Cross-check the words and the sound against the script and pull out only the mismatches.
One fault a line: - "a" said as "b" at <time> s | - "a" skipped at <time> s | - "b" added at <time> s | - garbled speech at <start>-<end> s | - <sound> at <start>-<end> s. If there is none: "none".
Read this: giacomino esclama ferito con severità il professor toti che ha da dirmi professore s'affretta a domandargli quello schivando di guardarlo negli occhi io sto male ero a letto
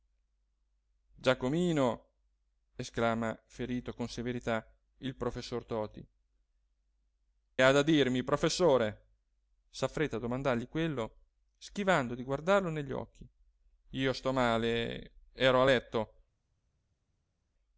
- "che" skipped at 6.0 s